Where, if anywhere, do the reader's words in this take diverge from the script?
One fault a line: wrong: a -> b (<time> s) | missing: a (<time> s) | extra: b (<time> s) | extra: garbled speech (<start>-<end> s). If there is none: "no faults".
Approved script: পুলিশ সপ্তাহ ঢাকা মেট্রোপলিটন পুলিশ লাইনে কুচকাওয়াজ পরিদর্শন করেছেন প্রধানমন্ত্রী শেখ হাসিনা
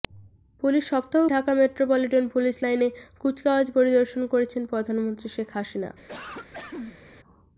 no faults